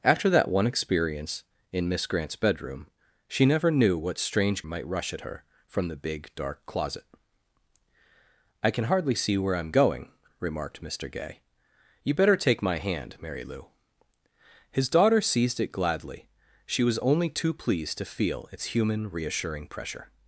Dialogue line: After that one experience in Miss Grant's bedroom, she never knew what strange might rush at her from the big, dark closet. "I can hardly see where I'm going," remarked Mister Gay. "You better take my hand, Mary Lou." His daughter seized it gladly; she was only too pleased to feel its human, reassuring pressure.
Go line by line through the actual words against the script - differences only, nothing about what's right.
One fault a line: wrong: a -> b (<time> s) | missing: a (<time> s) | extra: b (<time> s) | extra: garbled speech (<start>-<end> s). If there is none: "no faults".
no faults